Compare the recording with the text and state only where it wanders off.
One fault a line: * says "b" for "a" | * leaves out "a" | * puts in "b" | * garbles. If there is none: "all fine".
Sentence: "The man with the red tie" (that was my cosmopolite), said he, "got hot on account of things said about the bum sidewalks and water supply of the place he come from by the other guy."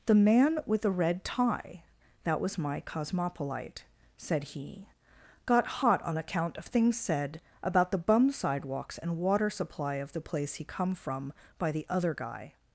all fine